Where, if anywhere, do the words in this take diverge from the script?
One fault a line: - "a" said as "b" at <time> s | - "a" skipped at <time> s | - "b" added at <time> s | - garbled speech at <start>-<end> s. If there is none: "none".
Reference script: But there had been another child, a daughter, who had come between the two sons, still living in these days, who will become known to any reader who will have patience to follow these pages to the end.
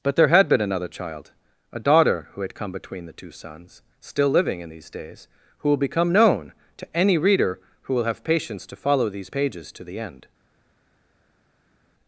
none